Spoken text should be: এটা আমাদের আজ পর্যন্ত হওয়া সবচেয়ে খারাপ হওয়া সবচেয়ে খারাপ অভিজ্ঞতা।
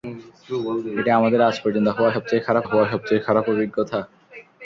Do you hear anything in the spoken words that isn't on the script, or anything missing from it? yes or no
no